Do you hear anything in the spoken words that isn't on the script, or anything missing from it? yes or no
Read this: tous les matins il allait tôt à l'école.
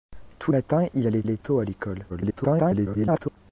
yes